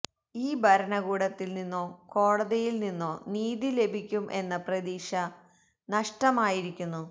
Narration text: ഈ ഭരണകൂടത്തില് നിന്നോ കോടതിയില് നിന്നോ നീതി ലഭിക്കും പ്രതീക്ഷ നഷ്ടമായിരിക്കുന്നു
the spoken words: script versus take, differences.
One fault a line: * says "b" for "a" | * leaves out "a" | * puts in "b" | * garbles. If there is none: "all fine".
* puts in "എന്ന"